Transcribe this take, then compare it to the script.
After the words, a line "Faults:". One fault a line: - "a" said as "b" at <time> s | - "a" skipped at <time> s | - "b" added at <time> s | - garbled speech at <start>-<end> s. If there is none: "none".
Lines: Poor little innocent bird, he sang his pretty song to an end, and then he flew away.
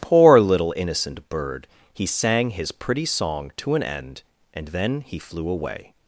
Poor little innocent bird, he sang his pretty song to an end, and then he flew away.
Faults:
none